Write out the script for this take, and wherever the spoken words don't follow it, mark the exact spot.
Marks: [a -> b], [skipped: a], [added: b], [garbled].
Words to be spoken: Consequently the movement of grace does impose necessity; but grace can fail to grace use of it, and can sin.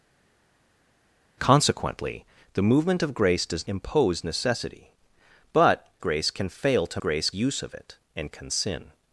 Consequently the movement of grace does impose necessity; but grace can fail to grace use of it, and can sin.